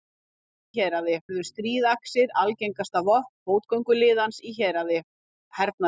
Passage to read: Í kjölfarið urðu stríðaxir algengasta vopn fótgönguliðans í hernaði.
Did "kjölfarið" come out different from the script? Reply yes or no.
yes